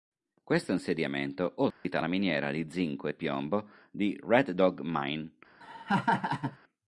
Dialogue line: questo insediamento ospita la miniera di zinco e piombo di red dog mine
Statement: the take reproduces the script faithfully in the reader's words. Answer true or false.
true